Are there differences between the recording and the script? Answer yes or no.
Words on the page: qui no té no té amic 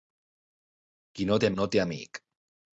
no